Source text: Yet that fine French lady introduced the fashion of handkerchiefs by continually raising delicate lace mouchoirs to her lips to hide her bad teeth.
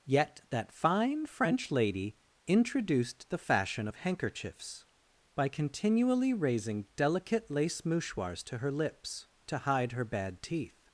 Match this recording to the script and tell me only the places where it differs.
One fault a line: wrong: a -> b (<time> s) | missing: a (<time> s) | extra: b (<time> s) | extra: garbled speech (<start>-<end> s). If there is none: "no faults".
no faults